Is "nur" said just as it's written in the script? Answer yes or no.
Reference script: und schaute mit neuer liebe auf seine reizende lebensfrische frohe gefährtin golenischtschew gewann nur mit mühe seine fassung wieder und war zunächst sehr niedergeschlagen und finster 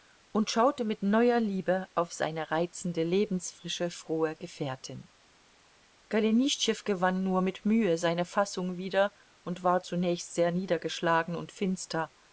yes